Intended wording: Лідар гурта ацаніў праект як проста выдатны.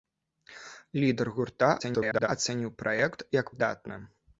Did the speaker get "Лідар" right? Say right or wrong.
right